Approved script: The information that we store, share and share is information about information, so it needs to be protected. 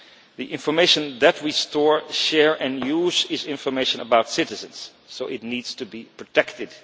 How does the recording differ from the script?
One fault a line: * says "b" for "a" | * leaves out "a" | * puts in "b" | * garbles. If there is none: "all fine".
* says "use" for "share"
* says "citizens" for "information"